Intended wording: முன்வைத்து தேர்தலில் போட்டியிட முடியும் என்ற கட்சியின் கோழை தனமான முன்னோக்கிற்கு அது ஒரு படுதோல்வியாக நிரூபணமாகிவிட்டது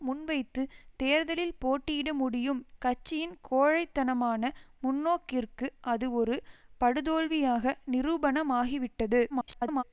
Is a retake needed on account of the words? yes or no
yes